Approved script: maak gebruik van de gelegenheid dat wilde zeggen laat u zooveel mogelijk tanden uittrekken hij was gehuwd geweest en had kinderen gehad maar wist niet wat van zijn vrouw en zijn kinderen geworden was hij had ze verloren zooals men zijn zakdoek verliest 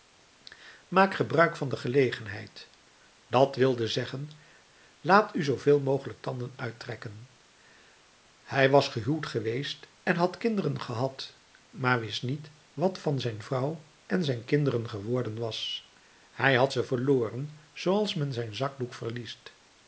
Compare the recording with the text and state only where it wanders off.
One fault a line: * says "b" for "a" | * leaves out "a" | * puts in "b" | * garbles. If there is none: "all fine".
all fine